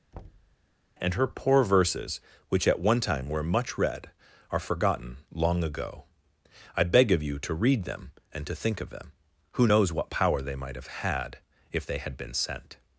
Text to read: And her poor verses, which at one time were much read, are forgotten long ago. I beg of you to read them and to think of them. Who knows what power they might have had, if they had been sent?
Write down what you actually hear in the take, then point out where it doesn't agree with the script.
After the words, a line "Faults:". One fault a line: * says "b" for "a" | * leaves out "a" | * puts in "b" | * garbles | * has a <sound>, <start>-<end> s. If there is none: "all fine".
And her poor verses, which at one time were much read, are forgotten long ago. I beg of you to read them and to think of them. Who knows what power they might have had, if they had been sent?
Faults:
* has a thud, 0.1-0.6 s